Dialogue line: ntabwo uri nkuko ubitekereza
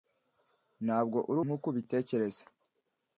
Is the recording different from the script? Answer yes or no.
no